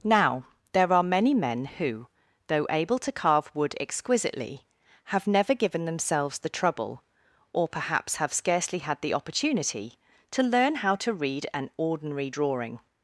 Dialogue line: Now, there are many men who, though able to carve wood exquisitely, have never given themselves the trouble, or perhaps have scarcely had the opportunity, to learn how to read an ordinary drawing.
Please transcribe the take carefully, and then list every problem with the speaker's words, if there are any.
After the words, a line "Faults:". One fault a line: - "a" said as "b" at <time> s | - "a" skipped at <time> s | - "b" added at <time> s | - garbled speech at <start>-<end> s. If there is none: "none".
Now, there are many men who, though able to carve wood exquisitely, have never given themselves the trouble, or perhaps have scarcely had the opportunity, to learn how to read an ordinary drawing.
Faults:
none